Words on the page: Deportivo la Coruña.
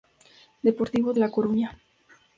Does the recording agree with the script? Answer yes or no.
yes